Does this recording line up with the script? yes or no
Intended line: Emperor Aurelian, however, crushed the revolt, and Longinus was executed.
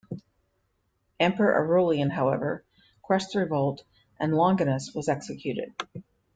yes